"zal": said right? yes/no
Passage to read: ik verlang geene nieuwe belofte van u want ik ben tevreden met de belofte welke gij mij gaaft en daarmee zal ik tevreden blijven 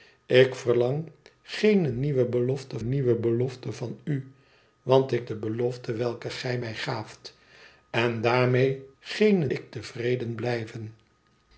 no